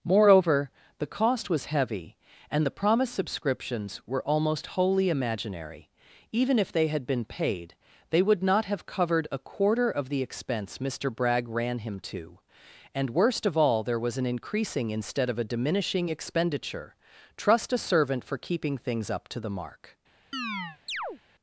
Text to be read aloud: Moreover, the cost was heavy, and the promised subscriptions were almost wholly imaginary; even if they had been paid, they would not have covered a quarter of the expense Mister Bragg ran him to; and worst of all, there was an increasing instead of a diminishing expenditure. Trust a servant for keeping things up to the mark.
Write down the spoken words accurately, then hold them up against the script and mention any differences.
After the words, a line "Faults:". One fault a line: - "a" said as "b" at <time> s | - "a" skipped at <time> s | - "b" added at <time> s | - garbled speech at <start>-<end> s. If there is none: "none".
Moreover, the cost was heavy, and the promised subscriptions were almost wholly imaginary; even if they had been paid, they would not have covered a quarter of the expense Mister Bragg ran him to; and worst of all, there was an increasing instead of a diminishing expenditure. Trust a servant for keeping things up to the mark.
Faults:
none